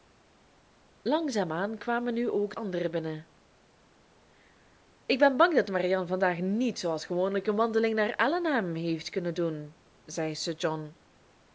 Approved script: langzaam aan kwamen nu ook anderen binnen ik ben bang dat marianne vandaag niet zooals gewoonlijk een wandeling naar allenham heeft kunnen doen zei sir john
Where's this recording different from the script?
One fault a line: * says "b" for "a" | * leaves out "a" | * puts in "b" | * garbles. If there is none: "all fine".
all fine